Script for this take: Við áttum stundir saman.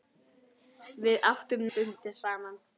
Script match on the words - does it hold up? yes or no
yes